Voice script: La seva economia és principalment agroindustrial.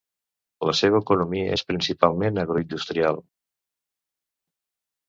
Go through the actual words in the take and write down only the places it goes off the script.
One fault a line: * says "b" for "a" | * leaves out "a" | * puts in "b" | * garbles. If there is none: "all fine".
all fine